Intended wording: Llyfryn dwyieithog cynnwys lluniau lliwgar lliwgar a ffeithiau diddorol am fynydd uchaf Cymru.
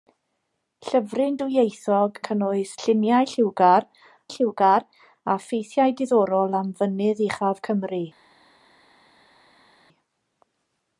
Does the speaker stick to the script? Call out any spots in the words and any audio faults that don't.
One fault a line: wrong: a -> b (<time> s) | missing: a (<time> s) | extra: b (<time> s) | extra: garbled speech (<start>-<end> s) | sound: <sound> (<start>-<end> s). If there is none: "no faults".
no faults